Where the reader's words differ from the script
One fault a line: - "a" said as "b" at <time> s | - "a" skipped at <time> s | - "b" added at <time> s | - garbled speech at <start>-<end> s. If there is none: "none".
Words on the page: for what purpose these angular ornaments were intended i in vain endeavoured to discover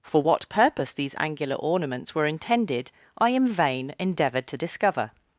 none